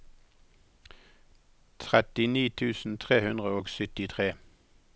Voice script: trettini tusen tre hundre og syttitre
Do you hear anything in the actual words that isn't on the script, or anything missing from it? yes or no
no